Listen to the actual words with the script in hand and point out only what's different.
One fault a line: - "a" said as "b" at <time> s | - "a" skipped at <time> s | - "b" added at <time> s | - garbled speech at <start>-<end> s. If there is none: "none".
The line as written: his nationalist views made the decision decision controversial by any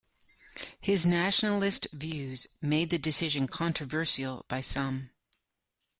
- "decision" skipped at 3.5 s
- "any" said as "some" at 4.6 s